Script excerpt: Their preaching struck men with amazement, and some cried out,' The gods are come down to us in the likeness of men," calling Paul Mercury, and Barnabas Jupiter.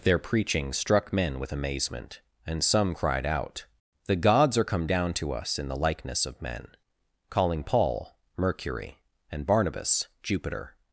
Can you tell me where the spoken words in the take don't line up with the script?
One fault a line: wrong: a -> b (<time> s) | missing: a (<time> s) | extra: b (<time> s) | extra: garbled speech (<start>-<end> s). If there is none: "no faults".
no faults